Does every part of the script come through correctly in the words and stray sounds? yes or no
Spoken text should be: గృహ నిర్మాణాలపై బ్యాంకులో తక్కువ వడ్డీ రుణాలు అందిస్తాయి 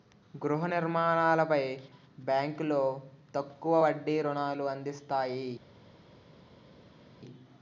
yes